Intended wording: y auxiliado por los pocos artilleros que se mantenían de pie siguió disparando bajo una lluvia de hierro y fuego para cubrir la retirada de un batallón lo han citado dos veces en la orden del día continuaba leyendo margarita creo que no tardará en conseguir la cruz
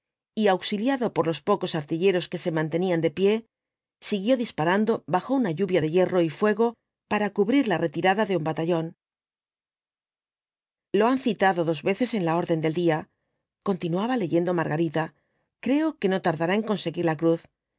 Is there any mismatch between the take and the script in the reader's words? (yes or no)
no